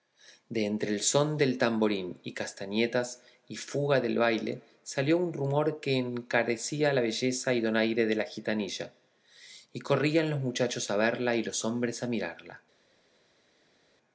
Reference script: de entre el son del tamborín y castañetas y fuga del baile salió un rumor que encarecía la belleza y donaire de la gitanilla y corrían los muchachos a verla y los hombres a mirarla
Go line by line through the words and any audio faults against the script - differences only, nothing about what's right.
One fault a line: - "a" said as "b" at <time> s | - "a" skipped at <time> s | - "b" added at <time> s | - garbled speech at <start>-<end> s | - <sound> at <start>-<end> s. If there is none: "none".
none